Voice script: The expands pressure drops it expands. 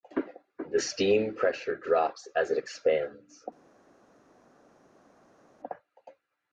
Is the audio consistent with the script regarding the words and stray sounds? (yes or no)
no